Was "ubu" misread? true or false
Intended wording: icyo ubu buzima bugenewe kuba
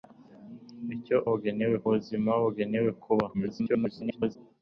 true